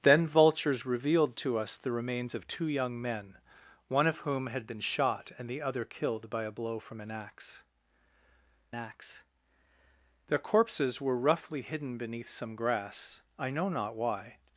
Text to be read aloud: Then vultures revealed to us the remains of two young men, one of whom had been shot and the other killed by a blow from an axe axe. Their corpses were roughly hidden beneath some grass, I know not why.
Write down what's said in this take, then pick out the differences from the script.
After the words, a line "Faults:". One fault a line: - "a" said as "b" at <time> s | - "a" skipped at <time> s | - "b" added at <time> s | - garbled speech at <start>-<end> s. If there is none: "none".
Then vultures revealed to us the remains of two young men, one of whom had been shot and the other killed by a blow from an axe axe. Their corpses were roughly hidden beneath some grass, I know not why.
Faults:
none